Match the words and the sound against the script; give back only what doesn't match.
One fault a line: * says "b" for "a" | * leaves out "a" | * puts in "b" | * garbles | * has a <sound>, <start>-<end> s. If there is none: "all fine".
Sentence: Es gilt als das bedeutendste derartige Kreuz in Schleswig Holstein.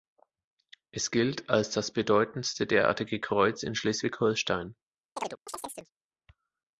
* has a chirp, 5.2-5.9 s